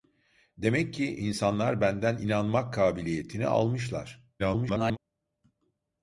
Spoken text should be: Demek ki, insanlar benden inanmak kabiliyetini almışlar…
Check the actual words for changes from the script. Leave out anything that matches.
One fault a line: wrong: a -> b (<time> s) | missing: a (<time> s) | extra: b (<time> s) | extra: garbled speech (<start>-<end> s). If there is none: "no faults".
extra: garbled speech (4.4-5.0 s)